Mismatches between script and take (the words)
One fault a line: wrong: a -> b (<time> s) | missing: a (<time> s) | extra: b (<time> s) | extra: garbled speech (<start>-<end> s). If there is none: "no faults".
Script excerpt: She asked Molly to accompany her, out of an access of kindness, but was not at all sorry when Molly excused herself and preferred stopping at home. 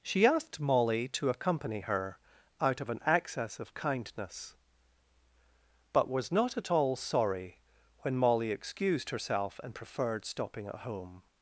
no faults